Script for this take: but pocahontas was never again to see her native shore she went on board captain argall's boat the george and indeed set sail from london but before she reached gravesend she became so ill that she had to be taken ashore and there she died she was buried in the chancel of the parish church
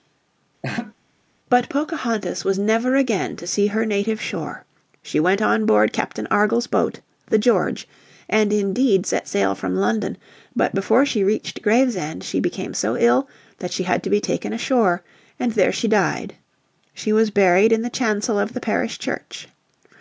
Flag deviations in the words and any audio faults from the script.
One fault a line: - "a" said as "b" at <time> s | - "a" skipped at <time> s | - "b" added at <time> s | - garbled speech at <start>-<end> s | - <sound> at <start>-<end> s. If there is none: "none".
- laugh at 0.6-0.9 s